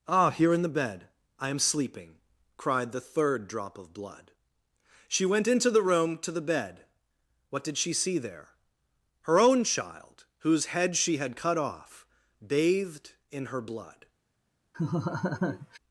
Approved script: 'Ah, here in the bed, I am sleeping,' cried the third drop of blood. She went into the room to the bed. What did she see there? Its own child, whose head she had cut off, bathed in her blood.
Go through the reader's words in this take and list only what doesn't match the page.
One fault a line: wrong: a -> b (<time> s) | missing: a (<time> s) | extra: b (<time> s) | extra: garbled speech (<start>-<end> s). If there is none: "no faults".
wrong: Its -> Her (9.2 s)